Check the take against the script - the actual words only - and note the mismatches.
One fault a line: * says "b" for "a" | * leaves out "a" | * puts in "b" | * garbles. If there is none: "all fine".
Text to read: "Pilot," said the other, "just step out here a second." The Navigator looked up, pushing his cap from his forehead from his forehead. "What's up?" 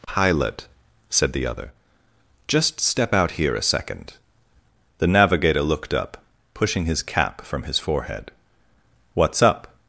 * leaves out "from his forehead"